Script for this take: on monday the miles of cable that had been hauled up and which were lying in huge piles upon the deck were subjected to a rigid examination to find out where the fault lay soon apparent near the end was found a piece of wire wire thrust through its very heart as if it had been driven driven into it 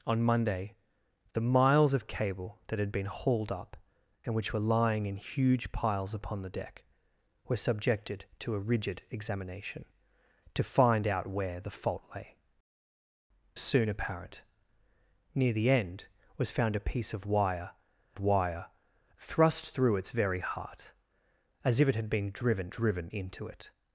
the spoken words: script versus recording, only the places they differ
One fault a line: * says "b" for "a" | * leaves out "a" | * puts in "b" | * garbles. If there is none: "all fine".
all fine